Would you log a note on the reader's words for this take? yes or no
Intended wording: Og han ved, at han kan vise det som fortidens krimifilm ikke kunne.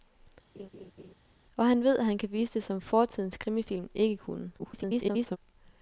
yes